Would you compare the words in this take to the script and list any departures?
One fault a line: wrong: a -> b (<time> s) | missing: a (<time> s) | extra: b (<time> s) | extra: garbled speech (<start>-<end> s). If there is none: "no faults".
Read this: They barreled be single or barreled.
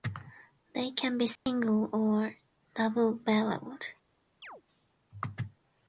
wrong: barreled -> can (0.9 s)
extra: double (2.7 s)